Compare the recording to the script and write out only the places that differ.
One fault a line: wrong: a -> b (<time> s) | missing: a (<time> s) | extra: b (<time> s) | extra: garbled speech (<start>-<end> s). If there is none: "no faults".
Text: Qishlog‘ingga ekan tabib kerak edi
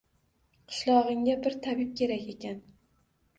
wrong: ekan -> bir (1.4 s)
wrong: edi -> ekan (2.4 s)